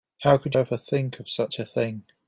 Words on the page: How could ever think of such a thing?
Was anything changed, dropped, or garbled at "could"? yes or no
no